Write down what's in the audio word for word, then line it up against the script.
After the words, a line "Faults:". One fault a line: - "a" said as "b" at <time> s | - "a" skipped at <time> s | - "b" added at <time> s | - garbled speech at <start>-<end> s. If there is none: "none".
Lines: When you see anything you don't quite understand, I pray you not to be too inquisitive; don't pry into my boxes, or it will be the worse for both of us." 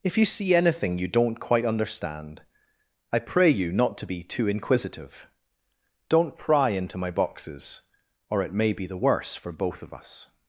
If you see anything you don't quite understand, I pray you not to be too inquisitive; don't pry into my boxes, or it may be the worse for both of us."
Faults:
- "When" said as "If" at 0.0 s
- "will" said as "may" at 8.5 s